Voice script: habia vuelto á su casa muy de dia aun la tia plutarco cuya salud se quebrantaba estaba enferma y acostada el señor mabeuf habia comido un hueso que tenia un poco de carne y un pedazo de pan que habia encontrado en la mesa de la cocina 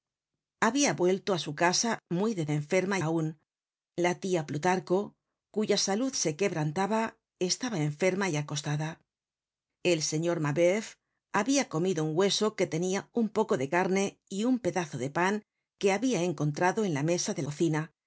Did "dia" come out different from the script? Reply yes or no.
yes